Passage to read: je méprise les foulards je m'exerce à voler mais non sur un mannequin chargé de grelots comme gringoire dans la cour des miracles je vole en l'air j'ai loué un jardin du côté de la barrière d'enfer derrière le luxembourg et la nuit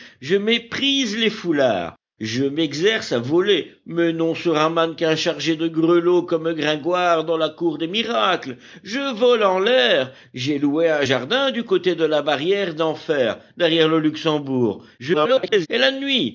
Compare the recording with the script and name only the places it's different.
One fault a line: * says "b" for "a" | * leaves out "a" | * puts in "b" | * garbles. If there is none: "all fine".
* garbles